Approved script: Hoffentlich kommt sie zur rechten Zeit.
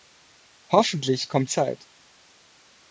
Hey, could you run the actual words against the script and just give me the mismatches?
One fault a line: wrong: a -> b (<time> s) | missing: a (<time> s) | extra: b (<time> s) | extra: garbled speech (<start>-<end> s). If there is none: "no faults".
missing: sie zur rechten (1.5 s)